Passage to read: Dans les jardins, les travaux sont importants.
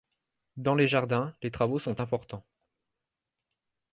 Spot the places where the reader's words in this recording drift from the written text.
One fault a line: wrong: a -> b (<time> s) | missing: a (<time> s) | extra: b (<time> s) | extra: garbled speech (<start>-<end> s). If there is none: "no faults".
no faults